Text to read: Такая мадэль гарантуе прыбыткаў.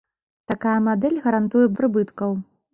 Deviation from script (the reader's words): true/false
false